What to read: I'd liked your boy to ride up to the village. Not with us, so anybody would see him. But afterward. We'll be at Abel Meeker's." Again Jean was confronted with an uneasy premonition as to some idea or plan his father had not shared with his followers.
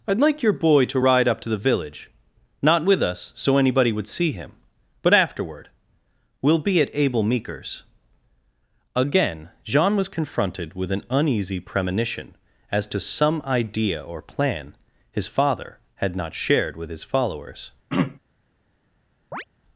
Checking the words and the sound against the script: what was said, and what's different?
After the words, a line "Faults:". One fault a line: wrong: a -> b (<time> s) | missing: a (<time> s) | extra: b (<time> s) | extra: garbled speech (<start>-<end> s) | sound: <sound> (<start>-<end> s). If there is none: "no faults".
I'd like your boy to ride up to the village. Not with us, so anybody would see him. But afterward. We'll be at Abel Meeker's." Again Jean was confronted with an uneasy premonition as to some idea or plan his father had not shared with his followers.
Faults:
wrong: liked -> like (0.2 s)
sound: throat clearing (17.9-18.2 s)
sound: chirp (19.3-19.4 s)